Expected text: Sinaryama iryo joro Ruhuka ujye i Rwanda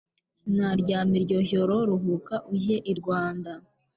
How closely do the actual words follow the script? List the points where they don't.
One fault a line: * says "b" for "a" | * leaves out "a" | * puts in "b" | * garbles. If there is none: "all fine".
all fine